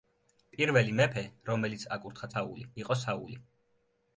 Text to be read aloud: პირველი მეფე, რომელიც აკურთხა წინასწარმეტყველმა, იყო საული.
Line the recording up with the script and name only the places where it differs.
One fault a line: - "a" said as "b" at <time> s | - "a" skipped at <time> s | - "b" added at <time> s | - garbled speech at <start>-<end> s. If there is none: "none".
- "წინასწარმეტყველმა" said as "საული" at 2.3 s